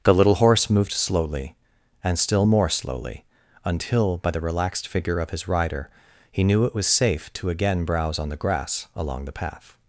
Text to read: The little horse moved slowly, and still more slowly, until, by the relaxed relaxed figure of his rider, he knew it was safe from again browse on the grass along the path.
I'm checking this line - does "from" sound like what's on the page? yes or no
no